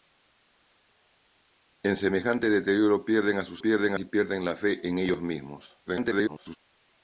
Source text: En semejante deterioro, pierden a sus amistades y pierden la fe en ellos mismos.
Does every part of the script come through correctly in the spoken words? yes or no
no